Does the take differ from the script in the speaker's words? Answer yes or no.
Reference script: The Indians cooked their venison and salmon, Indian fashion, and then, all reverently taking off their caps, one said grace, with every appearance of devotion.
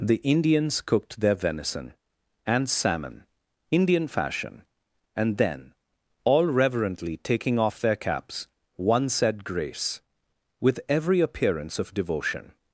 no